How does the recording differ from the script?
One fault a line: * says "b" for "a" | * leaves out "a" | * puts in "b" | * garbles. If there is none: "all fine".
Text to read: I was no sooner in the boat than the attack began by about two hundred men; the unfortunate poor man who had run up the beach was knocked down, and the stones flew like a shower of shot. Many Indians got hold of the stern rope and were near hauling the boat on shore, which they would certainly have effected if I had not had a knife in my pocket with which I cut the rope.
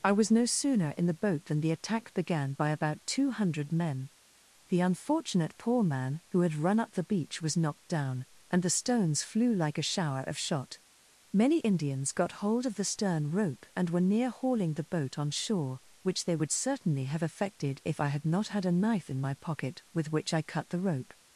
all fine